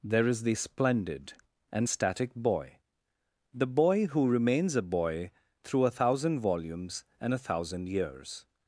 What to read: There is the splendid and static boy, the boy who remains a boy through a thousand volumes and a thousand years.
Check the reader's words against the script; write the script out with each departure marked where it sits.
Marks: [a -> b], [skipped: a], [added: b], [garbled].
There is the splendid and static boy, the boy who remains a boy through a thousand volumes and a thousand years.